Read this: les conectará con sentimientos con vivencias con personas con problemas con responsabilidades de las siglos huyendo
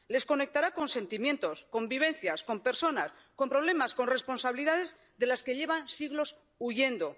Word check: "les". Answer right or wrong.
right